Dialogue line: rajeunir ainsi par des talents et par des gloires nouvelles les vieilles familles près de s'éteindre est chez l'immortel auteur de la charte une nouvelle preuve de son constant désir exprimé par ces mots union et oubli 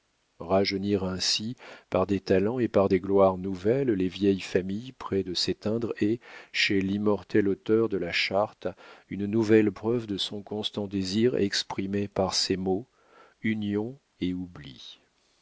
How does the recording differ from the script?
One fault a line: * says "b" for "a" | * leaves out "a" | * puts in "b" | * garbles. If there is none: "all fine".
all fine